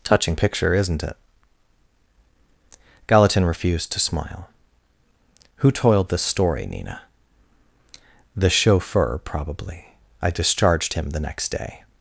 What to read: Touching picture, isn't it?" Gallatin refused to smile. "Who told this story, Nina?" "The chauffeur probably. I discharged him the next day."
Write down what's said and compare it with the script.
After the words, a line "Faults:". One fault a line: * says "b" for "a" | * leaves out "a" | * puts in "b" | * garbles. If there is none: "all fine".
Touching picture, isn't it?" Gallatin refused to smile. "Who toiled this story, Nina?" "The chauffeur probably. I discharged him the next day."
Faults:
* says "toiled" for "told"